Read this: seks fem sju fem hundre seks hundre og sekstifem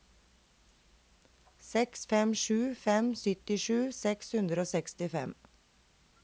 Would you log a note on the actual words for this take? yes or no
yes